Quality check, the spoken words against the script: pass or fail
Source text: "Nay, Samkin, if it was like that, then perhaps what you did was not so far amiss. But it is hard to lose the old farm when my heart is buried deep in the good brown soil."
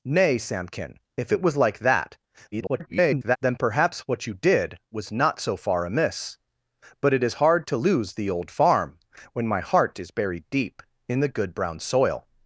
fail